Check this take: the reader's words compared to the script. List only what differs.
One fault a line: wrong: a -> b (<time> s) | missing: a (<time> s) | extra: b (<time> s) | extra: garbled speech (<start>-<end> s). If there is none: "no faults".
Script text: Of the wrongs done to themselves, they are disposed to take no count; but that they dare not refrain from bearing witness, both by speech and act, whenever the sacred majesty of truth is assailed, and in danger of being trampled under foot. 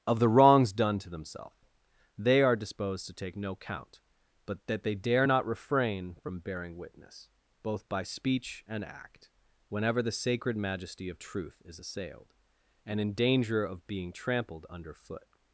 no faults